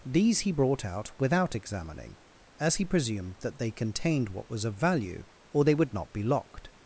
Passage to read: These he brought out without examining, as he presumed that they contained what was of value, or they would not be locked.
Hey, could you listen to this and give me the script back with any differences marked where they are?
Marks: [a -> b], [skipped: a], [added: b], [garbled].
These he brought out without examining, as he presumed that they contained what was of value, or they would not be locked.